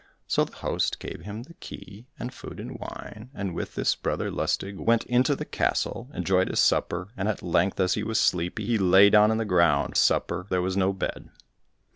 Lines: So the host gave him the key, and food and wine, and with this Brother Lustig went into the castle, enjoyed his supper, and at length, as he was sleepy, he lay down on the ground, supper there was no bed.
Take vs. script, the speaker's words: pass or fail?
pass